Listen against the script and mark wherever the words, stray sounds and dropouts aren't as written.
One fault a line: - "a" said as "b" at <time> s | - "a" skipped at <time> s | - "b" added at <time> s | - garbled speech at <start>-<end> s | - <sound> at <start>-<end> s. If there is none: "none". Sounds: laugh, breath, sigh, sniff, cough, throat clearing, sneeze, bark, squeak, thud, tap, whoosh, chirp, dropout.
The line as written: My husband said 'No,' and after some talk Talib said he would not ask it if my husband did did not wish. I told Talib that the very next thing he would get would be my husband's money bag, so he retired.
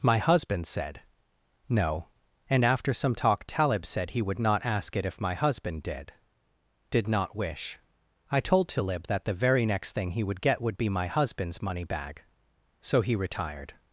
none